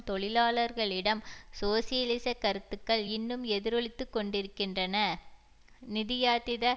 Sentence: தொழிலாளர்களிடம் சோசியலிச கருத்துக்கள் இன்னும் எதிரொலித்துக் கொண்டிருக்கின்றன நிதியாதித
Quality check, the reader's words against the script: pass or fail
pass